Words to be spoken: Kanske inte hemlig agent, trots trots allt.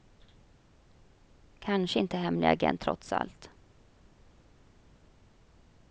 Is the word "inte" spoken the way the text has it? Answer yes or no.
yes